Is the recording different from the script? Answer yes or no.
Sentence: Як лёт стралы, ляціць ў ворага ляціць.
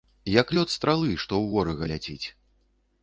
yes